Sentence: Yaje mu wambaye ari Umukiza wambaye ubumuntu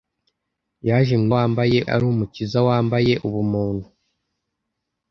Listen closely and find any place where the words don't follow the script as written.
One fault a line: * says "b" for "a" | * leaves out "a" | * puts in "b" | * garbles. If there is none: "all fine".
all fine